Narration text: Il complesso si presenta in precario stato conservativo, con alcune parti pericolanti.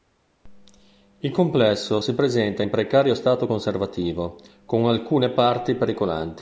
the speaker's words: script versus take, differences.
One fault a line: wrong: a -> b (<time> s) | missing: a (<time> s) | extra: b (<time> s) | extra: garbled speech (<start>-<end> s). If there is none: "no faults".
no faults